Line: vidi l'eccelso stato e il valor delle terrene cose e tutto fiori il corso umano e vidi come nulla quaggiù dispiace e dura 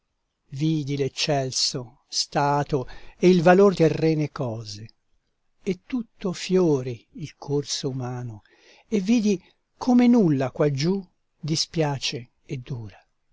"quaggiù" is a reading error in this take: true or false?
false